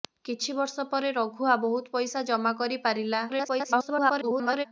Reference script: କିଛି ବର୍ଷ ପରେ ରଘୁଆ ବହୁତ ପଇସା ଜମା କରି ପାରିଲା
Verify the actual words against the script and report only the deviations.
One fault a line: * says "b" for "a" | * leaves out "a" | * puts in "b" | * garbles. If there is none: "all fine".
* garbles